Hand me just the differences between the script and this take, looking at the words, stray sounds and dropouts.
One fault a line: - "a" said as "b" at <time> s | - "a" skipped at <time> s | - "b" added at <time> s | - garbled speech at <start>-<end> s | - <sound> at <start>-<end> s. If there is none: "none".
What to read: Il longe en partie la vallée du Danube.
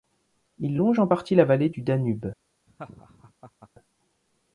- laugh at 2.7-3.7 s